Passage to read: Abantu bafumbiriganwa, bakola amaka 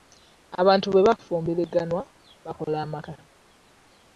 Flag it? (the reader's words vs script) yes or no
yes